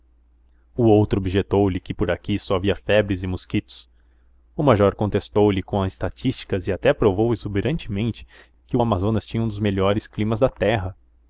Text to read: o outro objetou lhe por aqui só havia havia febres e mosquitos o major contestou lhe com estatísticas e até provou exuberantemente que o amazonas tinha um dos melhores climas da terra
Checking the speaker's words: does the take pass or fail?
fail